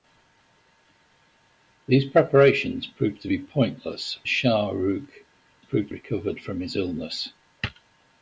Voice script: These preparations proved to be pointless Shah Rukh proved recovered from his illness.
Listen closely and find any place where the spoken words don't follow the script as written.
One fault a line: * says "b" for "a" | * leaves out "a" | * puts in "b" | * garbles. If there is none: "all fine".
all fine